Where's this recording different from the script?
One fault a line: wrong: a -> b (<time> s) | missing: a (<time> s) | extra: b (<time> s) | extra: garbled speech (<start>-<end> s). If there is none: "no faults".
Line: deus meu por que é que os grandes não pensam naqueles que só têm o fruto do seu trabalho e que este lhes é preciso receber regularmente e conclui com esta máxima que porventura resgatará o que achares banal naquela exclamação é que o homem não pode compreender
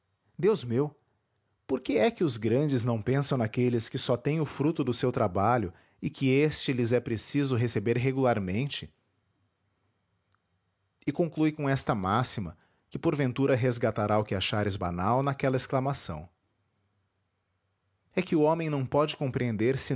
no faults